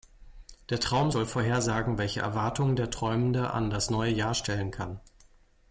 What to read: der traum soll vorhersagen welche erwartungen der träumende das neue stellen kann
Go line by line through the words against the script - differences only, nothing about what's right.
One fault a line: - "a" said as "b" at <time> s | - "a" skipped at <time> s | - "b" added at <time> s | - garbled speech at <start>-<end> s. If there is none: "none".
- "an" added at 3.5 s
- "jahr" added at 4.1 s